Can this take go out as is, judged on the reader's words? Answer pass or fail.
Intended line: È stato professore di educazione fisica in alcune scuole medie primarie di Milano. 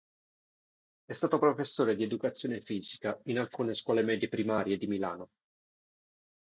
pass